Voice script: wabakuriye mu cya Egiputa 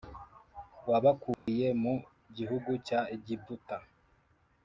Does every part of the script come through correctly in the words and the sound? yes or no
no